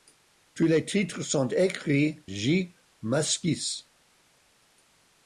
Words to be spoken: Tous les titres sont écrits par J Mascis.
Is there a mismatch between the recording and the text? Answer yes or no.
yes